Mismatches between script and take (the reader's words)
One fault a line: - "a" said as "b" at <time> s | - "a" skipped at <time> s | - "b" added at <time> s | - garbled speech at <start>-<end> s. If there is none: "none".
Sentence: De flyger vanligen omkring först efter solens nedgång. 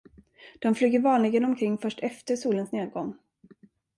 none